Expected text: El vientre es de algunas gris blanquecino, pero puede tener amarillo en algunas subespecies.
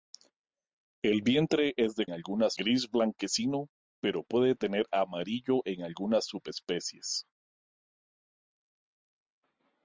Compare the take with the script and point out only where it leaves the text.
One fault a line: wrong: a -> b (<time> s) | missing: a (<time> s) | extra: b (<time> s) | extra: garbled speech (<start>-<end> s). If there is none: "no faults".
no faults